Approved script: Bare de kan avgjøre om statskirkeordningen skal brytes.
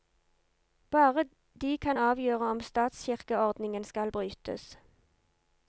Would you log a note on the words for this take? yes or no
no